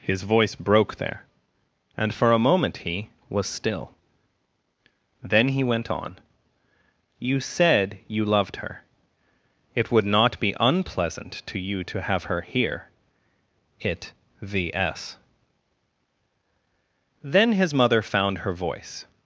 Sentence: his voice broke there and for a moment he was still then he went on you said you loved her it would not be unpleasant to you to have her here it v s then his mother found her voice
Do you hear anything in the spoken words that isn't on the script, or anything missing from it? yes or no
no